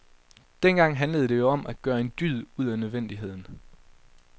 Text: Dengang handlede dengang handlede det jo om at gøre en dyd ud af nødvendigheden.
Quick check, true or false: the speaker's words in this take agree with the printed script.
false